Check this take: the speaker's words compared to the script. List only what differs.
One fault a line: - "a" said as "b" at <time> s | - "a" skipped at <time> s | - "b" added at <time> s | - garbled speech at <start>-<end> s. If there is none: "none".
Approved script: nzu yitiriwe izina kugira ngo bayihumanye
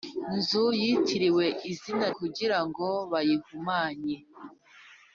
none